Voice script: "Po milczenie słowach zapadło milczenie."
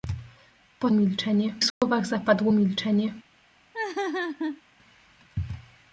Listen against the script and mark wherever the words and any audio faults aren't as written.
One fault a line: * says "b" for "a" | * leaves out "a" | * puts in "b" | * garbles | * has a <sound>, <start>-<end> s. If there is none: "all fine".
* has a dropout, 1.7-1.8 s
* has a laugh, 3.7-4.6 s